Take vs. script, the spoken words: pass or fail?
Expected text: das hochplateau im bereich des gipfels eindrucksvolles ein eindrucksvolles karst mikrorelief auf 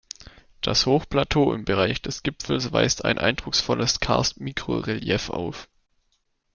fail